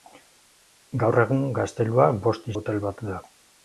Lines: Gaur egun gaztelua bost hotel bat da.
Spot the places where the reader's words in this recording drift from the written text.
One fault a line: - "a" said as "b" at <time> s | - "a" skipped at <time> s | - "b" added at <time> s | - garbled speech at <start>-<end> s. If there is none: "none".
none